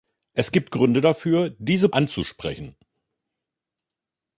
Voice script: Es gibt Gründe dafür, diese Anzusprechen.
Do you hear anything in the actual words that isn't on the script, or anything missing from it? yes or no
no